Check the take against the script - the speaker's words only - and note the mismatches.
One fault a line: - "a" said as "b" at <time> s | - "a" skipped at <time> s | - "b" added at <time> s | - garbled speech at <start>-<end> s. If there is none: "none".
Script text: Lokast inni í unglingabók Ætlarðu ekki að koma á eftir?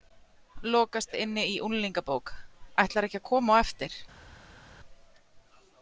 none